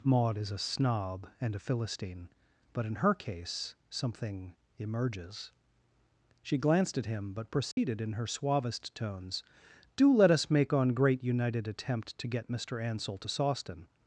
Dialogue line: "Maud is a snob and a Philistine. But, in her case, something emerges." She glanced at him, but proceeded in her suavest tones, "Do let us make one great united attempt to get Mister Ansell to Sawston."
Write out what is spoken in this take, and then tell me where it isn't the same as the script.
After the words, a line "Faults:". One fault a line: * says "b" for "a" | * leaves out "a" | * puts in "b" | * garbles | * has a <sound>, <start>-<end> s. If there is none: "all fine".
"Maud is a snob and a Philistine. But, in her case, something emerges." She glanced at him, but proceeded in her suavest tones, "Do let us make on great united attempt to get Mister Ansell to Sawston."
Faults:
* has a dropout, 7.7-7.8 s
* says "on" for "one"